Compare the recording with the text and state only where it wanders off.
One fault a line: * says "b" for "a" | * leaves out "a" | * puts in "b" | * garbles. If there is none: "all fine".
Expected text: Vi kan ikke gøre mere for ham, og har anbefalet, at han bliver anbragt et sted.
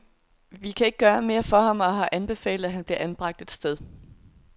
all fine